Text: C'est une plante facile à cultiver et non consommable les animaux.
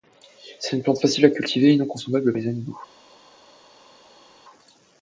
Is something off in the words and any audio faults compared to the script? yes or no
no